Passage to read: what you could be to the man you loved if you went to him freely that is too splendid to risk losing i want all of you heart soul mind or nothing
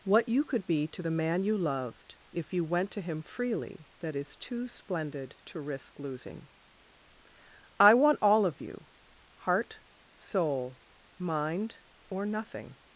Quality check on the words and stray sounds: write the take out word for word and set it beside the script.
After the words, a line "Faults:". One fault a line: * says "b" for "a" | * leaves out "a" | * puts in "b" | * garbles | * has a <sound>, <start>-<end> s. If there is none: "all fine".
what you could be to the man you loved if you went to him freely that is too splendid to risk losing i want all of you heart soul mind or nothing
Faults:
all fine